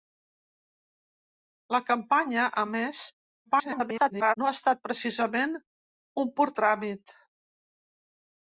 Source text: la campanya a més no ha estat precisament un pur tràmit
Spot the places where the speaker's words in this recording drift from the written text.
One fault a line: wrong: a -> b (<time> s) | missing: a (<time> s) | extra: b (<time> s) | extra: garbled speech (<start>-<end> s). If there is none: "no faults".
extra: garbled speech (3.5-4.3 s)